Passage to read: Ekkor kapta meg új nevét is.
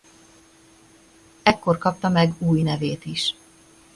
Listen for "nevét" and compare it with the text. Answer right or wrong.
right